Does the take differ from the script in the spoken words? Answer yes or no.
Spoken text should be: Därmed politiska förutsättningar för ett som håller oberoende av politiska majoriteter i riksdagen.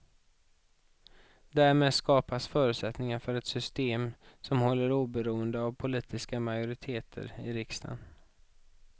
yes